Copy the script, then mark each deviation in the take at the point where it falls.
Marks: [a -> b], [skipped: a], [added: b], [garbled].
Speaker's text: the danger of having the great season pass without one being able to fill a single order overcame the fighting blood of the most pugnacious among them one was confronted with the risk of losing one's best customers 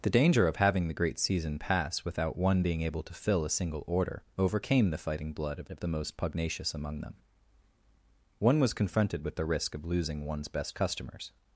the danger of having the great season pass without one being able to fill a single order overcame the fighting blood of [added: of] the most pugnacious among them one was confronted with the risk of losing one's best customers